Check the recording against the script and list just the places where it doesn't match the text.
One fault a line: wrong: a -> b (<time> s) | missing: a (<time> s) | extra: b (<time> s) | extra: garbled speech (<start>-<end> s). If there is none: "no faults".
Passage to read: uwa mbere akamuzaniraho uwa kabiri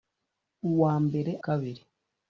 missing: akamuzaniraho uwa (1.3 s)